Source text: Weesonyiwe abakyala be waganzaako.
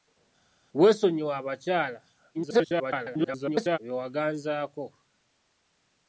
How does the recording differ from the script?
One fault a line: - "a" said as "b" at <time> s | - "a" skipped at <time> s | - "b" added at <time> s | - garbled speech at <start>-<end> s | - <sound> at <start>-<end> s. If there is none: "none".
- garbled speech at 2.3-3.8 s